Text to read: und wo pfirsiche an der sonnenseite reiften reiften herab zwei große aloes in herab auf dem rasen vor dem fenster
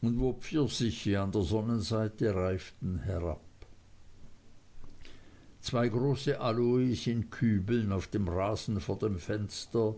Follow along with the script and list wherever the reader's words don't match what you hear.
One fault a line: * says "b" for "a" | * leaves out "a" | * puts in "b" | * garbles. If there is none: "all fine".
* leaves out "reiften"
* says "kübeln" for "herab"